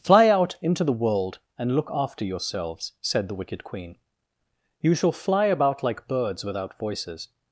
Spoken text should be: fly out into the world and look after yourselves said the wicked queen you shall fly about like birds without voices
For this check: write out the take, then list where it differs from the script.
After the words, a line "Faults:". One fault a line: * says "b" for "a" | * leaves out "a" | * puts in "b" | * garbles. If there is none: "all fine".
fly out into the world and look after yourselves said the wicked queen you shall fly about like birds without voices
Faults:
all fine